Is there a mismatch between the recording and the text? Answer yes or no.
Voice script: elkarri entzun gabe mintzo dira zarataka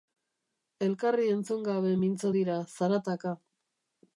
no